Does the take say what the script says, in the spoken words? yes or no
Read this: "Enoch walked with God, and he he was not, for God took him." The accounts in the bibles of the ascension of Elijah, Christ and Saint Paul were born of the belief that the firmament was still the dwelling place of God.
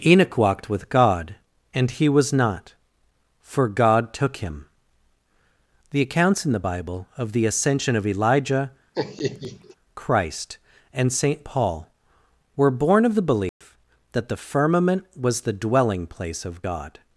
no